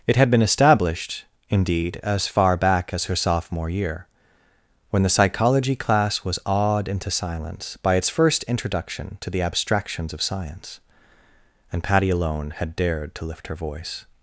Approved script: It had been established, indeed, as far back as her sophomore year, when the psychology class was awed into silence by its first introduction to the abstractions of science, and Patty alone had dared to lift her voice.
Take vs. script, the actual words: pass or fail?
pass